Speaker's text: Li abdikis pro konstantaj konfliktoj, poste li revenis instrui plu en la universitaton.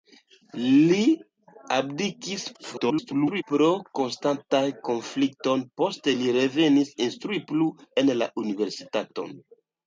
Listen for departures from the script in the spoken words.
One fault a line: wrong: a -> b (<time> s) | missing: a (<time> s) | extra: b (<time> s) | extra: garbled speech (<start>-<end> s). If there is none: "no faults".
extra: garbled speech (2.5-3.4 s)